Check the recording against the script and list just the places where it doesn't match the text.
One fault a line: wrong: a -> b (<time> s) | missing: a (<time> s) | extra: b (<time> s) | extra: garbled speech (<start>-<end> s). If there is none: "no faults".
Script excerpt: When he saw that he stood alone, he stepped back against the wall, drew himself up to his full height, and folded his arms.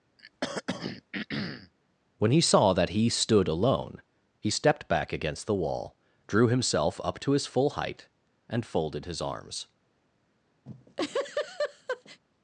no faults